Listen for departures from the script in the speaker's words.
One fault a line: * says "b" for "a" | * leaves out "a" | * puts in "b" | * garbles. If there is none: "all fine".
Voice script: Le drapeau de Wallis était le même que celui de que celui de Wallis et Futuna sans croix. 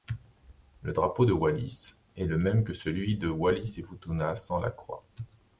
* says "est" for "était"
* leaves out "que celui de"
* puts in "la"